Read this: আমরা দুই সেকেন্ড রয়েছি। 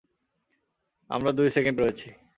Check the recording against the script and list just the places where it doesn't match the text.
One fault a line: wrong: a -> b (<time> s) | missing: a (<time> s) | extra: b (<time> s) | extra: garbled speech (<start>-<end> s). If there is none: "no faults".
no faults